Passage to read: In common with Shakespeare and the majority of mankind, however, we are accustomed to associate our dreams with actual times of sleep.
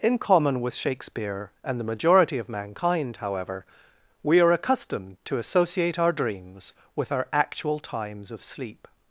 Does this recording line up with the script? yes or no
no